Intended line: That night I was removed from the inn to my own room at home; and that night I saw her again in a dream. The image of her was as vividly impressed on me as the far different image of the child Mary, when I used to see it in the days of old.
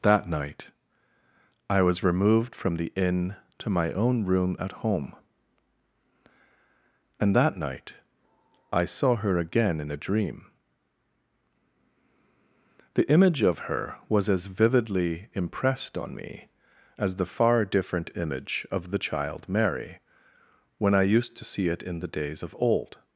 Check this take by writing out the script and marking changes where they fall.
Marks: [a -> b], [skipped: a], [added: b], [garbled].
That night I was removed from the inn to my own room at home; and that night I saw her again in a dream. The image of her was as vividly impressed on me as the far different image of the child Mary, when I used to see it in the days of old.